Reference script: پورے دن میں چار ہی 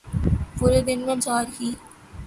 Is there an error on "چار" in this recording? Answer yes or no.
no